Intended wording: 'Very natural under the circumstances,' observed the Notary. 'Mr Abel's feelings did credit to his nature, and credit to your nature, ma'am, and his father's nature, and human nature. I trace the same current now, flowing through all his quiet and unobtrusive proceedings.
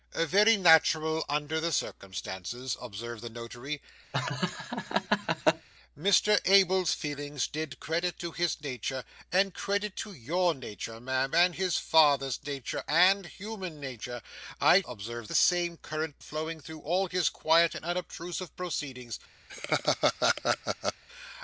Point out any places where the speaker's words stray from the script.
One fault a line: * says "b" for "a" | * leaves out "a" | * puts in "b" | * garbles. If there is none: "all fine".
* says "observed" for "trace"
* leaves out "now"